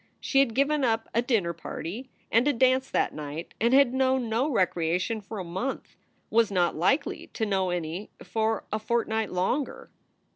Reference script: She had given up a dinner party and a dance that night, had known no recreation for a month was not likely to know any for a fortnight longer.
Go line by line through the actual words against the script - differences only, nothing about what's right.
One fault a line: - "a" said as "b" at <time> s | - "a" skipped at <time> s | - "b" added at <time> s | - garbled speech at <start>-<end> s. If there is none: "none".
- "and" added at 3.6 s